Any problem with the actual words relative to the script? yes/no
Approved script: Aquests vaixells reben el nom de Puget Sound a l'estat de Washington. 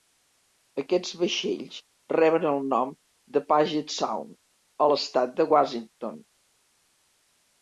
no